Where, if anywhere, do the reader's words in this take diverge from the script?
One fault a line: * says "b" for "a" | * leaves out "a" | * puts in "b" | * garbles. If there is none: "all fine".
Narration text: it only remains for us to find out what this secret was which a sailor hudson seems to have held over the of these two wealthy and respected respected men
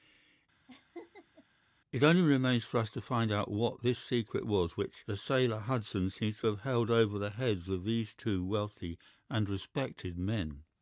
* says "the" for "a"
* puts in "heads"
* leaves out "respected"